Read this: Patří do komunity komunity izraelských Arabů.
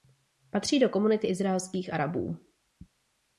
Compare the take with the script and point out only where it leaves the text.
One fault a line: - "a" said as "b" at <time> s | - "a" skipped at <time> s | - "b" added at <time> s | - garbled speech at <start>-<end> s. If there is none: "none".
- "komunity" skipped at 1.3 s